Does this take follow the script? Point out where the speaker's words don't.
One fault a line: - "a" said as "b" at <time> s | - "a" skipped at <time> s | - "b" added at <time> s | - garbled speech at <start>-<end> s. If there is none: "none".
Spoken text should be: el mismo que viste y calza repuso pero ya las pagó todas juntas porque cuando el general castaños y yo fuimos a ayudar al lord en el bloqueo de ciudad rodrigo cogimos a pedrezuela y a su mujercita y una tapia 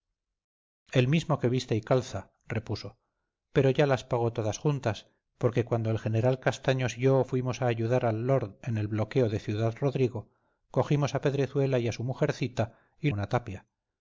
none